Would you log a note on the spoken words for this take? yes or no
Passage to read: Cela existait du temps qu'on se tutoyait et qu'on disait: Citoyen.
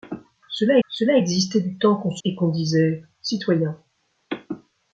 yes